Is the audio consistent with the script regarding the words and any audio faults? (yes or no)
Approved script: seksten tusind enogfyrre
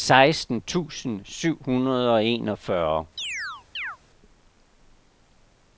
no